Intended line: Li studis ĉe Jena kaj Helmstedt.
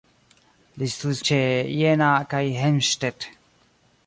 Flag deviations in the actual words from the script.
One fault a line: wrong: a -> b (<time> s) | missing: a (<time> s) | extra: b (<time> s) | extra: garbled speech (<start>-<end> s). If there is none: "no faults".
no faults